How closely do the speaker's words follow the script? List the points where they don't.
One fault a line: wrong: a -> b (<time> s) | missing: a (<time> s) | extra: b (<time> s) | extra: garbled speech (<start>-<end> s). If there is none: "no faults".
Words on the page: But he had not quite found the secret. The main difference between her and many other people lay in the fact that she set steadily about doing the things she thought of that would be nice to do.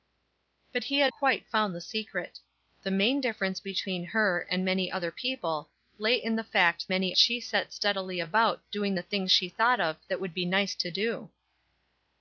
missing: not (1.1 s)
wrong: that -> many (6.9 s)